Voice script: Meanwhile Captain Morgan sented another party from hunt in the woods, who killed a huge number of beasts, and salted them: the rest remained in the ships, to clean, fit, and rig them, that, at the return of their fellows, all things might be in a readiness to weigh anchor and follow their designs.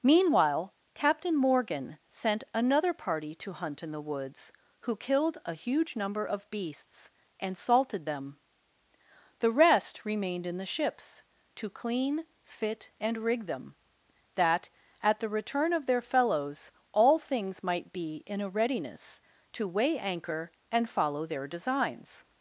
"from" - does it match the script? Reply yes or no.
no